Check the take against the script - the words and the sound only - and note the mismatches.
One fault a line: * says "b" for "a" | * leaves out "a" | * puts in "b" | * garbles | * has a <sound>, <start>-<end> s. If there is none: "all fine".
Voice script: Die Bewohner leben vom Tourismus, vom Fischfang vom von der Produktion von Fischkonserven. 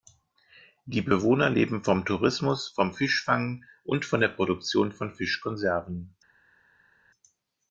* says "und" for "vom"